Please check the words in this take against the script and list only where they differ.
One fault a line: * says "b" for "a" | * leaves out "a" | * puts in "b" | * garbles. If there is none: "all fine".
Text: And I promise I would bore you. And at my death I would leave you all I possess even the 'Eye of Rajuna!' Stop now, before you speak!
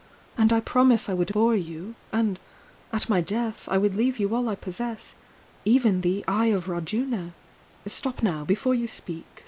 all fine